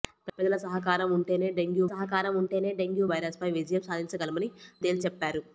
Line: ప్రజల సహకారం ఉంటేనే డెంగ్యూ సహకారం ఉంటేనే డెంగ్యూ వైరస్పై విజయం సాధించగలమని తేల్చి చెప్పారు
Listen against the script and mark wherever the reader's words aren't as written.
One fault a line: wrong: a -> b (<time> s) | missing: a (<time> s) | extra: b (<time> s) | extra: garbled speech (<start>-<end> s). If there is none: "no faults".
no faults